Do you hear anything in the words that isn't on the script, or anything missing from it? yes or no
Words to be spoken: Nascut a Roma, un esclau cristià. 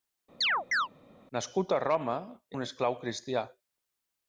no